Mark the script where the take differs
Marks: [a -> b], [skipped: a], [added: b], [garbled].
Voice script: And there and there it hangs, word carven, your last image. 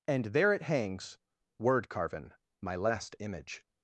And there [skipped: and there] it hangs, word carven, [your -> my] last image.